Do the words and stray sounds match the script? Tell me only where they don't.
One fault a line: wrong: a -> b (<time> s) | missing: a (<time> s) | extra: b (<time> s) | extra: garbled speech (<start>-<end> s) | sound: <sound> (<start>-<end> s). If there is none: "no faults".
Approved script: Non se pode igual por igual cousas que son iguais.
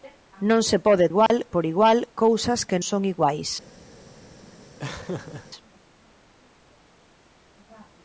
sound: dropout (1.3-1.3 s)
sound: laugh (4.8-5.5 s)